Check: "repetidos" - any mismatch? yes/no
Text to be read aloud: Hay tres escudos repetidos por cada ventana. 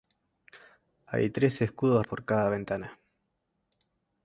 yes